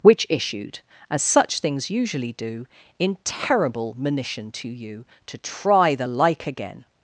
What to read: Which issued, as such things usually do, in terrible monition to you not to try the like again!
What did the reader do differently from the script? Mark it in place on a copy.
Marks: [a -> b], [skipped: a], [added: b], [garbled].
Which issued, as such things usually do, in terrible monition to you [skipped: not] to try the like again!